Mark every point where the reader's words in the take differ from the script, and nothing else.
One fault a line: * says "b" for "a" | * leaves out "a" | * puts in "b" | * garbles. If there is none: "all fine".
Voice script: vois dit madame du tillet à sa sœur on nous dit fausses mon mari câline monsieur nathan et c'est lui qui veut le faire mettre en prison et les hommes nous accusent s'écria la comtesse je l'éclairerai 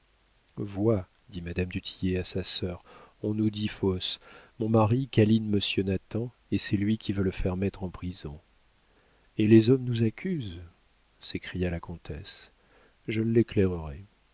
all fine